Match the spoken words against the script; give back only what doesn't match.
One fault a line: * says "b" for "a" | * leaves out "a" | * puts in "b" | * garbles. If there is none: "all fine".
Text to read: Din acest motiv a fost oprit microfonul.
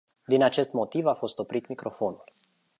all fine